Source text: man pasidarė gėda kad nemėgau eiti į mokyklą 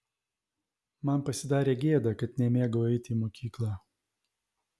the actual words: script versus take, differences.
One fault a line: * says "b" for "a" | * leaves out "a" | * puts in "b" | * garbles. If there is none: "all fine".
all fine